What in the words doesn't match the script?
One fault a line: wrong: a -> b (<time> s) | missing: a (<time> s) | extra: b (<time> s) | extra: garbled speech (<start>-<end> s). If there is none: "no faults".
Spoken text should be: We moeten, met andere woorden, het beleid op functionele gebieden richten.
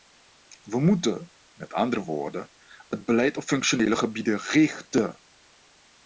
no faults